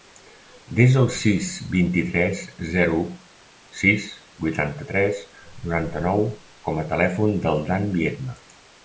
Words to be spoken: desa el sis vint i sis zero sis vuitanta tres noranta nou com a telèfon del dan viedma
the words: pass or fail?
fail